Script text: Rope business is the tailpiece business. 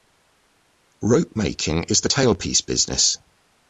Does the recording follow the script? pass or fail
fail